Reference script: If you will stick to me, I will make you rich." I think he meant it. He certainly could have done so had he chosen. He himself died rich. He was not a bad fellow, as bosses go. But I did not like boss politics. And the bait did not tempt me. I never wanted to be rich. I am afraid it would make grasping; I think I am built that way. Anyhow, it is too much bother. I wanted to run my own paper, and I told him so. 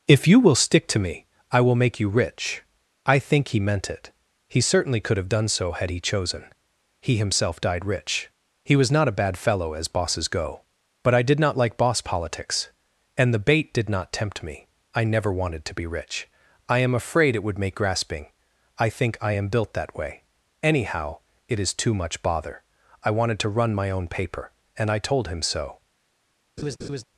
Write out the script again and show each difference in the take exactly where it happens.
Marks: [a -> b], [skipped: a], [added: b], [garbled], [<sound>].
If you will stick to me, I will make you rich." I think he meant it. He certainly could have done so had he chosen. He himself died rich. He was not a bad fellow, as bosses go. But I did not like boss politics. And the bait did not tempt me. I never wanted to be rich. I am afraid it would make grasping; I think I am built that way. Anyhow, it is too much bother. I wanted to run my own paper, and I told him so. [laugh]